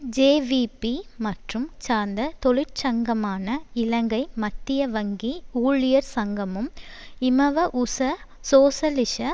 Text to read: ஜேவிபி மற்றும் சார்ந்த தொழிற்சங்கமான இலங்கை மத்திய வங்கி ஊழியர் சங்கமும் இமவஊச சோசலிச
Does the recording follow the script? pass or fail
pass